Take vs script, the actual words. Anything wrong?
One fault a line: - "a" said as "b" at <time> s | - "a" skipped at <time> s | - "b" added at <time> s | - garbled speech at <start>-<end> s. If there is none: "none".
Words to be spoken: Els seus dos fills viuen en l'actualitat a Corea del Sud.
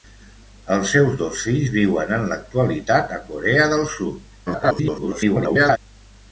- garbled speech at 4.5-5.8 s